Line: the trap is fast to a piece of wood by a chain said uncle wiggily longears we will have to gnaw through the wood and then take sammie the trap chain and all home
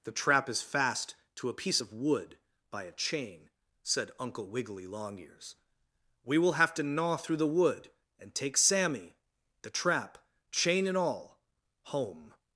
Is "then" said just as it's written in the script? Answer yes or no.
no